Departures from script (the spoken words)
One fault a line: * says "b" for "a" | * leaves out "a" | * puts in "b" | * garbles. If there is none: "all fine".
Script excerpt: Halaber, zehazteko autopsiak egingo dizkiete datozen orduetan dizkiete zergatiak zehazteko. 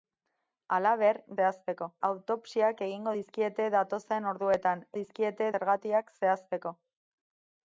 all fine